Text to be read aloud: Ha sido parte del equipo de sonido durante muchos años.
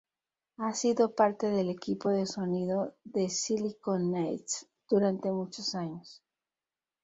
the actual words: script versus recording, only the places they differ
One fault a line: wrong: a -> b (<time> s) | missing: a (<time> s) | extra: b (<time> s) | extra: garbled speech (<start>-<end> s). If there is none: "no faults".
extra: de Silicon Knights (3.0 s)